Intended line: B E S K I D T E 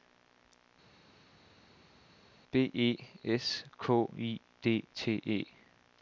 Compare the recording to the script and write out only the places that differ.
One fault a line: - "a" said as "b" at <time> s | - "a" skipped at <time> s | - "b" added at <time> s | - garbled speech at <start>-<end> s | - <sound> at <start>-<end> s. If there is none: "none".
none